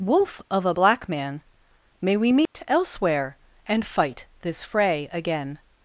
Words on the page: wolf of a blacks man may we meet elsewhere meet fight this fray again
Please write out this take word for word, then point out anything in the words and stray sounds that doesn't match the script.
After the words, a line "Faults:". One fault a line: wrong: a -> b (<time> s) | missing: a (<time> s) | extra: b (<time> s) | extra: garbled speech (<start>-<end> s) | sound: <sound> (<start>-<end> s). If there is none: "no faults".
wolf of a black man may we meet elsewhere and fight this fray again
Faults:
wrong: blacks -> black (0.7 s)
sound: dropout (2.5-2.5 s)
wrong: meet -> and (3.7 s)